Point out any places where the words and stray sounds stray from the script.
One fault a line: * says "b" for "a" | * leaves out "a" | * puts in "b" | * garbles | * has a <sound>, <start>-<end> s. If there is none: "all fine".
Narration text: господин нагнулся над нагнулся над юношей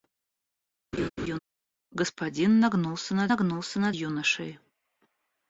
* has a laugh, 0.9-1.4 s